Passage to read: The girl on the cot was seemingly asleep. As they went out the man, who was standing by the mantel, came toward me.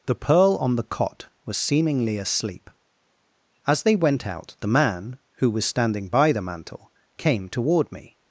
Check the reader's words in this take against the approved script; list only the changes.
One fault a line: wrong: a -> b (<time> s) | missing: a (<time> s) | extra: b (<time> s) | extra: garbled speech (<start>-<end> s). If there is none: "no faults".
wrong: girl -> pearl (0.1 s)